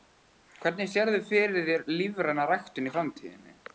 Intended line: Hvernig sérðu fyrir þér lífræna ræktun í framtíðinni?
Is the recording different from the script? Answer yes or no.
no